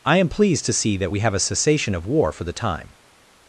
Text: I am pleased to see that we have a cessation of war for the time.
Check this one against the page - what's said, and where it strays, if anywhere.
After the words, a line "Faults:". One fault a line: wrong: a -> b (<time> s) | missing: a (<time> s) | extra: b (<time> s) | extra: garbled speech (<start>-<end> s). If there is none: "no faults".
I am pleased to see that we have a cessation of war for the time.
Faults:
no faults